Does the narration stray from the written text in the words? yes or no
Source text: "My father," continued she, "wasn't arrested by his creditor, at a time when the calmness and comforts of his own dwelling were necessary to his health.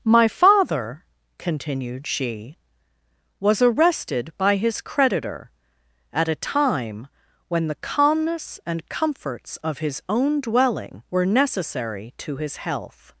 yes